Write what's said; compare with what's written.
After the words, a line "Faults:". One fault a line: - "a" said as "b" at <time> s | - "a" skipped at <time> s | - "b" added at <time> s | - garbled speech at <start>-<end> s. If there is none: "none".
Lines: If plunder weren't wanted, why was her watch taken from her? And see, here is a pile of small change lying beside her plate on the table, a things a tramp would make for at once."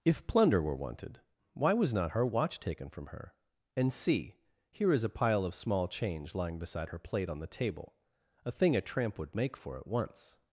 If plunder were wanted, why was not her watch taken from her? And see, here is a pile of small change lying beside her plate on the table, a thing a tramp would make for at once."
Faults:
- "weren't" said as "were" at 0.6 s
- "not" added at 1.9 s
- "things" said as "thing" at 8.5 s